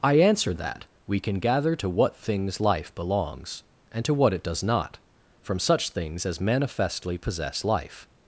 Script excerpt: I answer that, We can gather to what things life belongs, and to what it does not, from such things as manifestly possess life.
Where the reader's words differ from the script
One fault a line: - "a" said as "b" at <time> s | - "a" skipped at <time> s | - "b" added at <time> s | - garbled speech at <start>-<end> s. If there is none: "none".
none